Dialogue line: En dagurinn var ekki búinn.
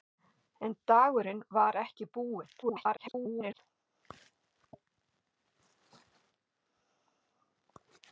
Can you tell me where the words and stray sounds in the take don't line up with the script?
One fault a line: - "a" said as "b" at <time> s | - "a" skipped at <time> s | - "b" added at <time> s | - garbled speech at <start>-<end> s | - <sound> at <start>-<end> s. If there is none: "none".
- garbled speech at 2.6-3.6 s